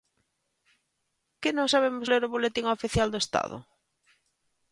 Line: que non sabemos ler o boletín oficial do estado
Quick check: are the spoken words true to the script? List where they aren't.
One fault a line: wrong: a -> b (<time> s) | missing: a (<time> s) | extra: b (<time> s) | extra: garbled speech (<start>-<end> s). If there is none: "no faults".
no faults